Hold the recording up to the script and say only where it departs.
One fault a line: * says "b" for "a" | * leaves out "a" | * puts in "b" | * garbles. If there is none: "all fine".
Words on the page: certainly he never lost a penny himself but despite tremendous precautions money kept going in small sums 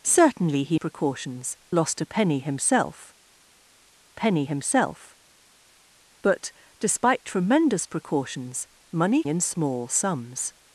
* says "precautions" for "never"
* puts in "penny himself"
* leaves out "kept going"